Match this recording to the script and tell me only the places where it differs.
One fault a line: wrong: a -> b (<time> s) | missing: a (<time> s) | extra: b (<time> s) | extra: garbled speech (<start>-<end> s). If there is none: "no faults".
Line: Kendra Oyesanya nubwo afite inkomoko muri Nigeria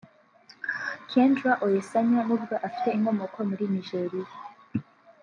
no faults